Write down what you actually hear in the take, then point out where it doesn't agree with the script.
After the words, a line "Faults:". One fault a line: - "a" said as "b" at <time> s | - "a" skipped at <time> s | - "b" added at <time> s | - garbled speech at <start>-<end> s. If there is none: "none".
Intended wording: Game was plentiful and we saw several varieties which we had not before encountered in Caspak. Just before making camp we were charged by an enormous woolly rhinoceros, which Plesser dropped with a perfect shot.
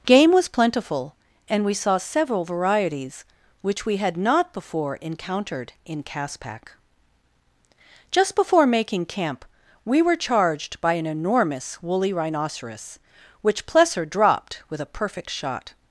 Game was plentiful and we saw several varieties which we had not before encountered in Caspak. Just before making camp we were charged by an enormous woolly rhinoceros, which Plesser dropped with a perfect shot.
Faults:
none